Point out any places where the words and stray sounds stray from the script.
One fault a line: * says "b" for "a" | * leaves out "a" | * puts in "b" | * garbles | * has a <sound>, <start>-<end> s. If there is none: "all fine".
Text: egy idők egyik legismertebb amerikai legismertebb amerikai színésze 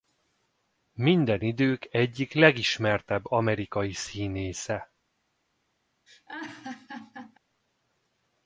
* says "minden" for "egy"
* leaves out "legismertebb amerikai"
* has a laugh, 6.1-7.4 s